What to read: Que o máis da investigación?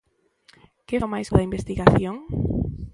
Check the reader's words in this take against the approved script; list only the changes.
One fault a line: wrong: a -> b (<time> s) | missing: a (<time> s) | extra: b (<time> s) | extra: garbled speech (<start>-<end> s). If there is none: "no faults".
no faults